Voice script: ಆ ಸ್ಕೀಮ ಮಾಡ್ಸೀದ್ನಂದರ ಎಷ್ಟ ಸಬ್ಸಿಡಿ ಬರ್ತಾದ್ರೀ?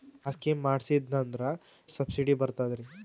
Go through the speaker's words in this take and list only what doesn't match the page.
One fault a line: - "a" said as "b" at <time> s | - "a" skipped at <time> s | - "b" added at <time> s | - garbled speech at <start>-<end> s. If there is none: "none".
- "ಎಷ್ಟ" skipped at 1.4 s